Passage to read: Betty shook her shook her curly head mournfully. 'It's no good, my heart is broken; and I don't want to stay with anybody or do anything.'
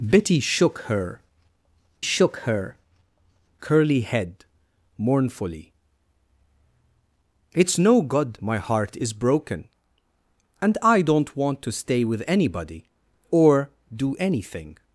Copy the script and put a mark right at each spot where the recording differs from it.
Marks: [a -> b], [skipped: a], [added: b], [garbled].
Betty shook her shook her curly head mournfully. 'It's no good, my heart is broken; and I don't want to stay with anybody or do anything.'